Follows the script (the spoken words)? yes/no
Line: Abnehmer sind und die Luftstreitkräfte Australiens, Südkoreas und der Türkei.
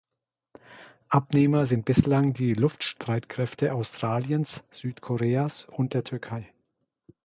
no